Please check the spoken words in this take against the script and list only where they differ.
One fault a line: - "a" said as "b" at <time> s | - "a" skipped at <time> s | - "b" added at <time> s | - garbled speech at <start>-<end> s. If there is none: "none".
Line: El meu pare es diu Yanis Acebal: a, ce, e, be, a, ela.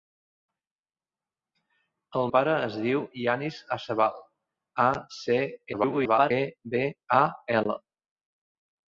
- "meu" skipped at 2.2 s
- garbled speech at 5.7-6.3 s